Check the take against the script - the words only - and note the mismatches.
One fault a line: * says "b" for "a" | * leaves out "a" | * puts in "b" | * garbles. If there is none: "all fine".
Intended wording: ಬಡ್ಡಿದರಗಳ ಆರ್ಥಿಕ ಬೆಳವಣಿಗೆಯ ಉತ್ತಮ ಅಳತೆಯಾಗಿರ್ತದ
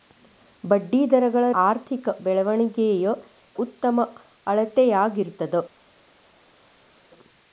all fine